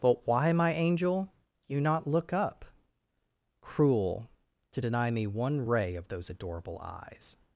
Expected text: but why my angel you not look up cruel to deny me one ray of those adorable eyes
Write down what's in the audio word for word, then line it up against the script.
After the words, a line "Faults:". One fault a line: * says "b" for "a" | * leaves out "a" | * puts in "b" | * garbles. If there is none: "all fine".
but why my angel you not look up cruel to deny me one ray of those adorable eyes
Faults:
all fine